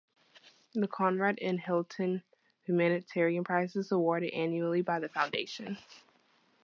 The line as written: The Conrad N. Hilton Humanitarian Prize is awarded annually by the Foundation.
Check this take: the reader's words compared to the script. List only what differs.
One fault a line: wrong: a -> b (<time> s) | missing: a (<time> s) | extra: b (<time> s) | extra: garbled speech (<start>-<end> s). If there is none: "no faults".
no faults